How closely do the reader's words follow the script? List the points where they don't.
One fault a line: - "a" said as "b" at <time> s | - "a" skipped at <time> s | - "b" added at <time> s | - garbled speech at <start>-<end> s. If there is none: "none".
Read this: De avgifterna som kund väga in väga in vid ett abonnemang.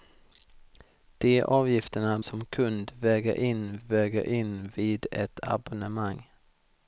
none